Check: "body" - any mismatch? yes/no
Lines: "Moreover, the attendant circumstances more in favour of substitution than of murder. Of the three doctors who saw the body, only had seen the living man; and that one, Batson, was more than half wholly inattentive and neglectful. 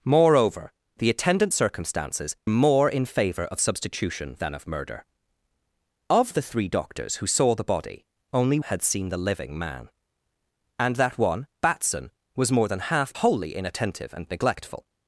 no